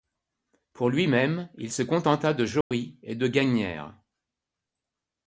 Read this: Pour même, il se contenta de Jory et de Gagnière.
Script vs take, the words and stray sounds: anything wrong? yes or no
yes